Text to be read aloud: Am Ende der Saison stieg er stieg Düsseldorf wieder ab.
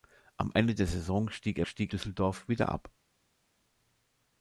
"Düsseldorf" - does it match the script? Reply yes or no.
yes